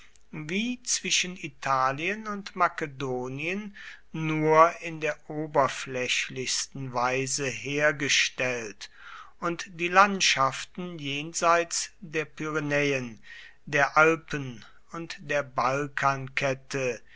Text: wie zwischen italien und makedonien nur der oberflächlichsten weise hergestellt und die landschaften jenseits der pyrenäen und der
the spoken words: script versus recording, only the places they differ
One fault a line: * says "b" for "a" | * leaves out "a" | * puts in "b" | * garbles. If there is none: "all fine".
* puts in "in"
* puts in "der alpen"